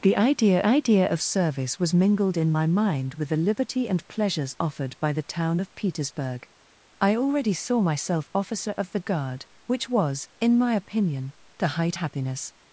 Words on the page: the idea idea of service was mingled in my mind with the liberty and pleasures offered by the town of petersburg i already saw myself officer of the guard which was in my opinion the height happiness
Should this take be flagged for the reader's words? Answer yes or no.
no